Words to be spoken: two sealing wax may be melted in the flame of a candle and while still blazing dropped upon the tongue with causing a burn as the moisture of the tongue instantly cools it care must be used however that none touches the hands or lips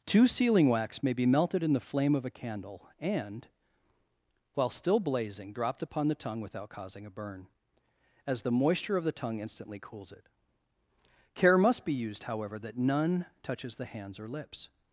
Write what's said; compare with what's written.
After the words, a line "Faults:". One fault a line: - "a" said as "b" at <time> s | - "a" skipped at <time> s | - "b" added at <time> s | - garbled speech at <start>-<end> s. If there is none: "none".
two sealing wax may be melted in the flame of a candle and while still blazing dropped upon the tongue without causing a burn as the moisture of the tongue instantly cools it care must be used however that none touches the hands or lips
Faults:
- "with" said as "without" at 6.4 s